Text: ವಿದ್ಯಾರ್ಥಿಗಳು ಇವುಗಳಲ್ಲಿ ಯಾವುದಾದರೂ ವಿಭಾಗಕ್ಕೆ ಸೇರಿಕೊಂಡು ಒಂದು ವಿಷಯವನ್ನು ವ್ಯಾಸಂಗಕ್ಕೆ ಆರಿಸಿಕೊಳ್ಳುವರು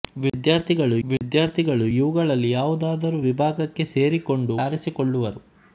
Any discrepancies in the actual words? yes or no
yes